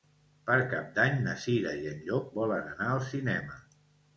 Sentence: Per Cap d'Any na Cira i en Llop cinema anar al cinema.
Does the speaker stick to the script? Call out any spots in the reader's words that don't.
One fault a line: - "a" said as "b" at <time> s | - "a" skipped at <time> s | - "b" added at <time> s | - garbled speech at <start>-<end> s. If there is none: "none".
- "cinema" said as "volen" at 2.4 s